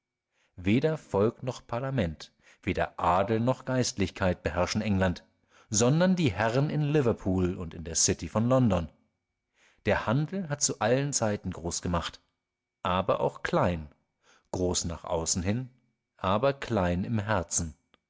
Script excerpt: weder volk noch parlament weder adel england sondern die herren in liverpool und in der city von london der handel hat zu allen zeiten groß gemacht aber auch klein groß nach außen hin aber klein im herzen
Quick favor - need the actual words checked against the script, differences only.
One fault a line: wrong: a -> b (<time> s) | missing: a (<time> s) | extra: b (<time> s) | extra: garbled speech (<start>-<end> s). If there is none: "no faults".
extra: noch geistlichkeit beherrschen (3.4 s)